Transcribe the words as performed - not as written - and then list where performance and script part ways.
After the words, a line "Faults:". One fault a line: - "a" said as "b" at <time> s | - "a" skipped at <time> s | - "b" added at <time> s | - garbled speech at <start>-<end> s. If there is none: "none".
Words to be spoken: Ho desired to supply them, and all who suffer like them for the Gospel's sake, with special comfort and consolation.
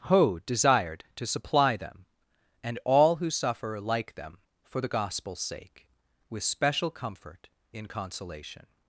Ho desired to supply them, and all who suffer like them for the Gospel's sake, with special comfort in consolation.
Faults:
- "and" said as "in" at 7.7 s